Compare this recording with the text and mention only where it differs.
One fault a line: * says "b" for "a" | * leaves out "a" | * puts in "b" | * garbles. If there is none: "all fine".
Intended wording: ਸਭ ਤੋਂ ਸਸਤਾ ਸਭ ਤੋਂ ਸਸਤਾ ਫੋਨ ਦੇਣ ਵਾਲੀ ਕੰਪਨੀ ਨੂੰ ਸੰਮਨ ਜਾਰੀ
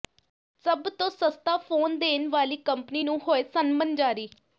* leaves out "ਸਭ ਤੋਂ ਸਸਤਾ"
* puts in "ਹੋਏ"